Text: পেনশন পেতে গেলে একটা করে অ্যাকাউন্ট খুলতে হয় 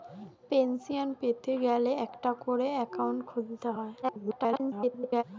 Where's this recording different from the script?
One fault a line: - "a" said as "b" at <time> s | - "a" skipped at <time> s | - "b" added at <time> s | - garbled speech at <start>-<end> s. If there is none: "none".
- garbled speech at 4.0-5.2 s